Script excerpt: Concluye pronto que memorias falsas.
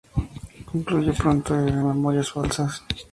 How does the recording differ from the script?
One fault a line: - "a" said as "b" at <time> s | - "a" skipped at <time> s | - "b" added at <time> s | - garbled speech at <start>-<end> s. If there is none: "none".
none